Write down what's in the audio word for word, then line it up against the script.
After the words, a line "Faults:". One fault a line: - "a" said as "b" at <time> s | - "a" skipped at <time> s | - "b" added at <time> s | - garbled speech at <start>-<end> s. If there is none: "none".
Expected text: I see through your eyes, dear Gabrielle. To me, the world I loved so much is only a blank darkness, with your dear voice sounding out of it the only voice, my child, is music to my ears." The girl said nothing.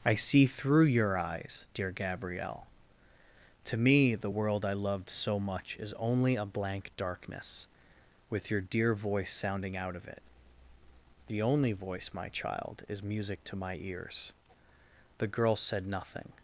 I see through your eyes, dear Gabrielle. To me, the world I loved so much is only a blank darkness, with your dear voice sounding out of it the only voice, my child, is music to my ears." The girl said nothing.
Faults:
none